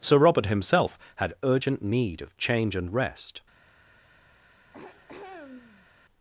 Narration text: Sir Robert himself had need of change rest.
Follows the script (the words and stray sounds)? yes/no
no